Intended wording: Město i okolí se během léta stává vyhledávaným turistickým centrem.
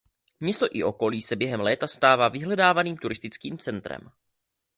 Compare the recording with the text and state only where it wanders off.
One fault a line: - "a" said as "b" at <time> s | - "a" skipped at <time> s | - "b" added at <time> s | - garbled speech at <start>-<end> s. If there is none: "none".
none